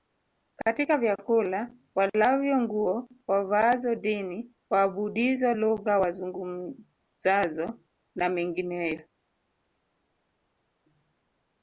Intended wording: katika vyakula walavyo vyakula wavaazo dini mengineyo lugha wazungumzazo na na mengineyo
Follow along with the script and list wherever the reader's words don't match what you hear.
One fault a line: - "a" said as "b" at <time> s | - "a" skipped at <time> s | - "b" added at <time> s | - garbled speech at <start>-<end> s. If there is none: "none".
- "vyakula" said as "nguo" at 2.6 s
- "mengineyo" said as "waabudizo" at 4.7 s
- "na" skipped at 8.3 s